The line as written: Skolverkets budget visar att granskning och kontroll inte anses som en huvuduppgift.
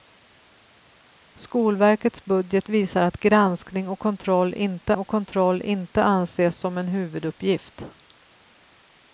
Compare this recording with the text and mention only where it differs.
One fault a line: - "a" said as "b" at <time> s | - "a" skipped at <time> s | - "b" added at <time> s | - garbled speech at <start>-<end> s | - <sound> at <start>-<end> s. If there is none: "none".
- "och kontroll inte" added at 5.0 s